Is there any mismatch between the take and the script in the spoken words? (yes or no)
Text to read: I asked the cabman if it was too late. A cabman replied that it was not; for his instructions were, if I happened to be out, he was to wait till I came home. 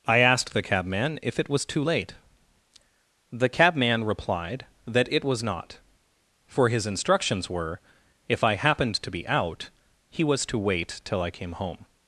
yes